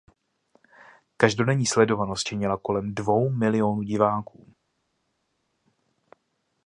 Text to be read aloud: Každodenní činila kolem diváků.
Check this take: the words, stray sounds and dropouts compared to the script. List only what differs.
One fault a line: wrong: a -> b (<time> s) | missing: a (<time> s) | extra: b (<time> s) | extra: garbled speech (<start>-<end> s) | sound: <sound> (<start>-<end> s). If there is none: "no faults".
extra: sledovanost (1.6 s)
extra: dvou milionů (2.9 s)